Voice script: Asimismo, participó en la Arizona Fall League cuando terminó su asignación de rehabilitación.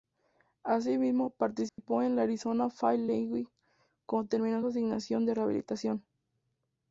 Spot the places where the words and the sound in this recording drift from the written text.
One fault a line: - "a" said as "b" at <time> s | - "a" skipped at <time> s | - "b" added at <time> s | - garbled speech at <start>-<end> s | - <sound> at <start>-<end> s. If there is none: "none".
- dropout at 1.7-1.8 s